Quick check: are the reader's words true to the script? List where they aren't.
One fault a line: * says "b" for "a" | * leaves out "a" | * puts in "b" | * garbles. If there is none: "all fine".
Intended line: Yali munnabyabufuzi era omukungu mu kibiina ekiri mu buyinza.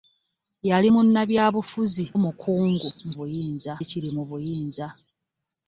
* leaves out "era"
* says "buyinza" for "kibiina"